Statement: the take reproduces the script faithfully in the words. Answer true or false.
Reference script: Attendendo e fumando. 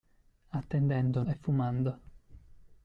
true